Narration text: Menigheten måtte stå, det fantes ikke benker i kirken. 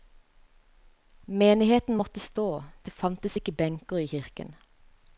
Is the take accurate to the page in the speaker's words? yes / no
yes